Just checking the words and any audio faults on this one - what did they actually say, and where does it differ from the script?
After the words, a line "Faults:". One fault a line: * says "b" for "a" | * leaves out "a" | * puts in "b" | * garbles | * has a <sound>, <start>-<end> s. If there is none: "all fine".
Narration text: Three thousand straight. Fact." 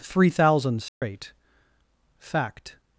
Three thousand straight. Fact."
Faults:
* has a dropout, 0.9-1.0 s